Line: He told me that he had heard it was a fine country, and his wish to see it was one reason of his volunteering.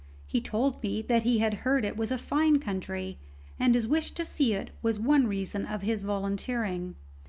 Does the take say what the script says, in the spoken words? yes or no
yes